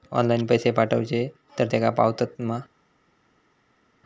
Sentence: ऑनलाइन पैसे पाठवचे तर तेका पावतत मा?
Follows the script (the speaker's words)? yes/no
yes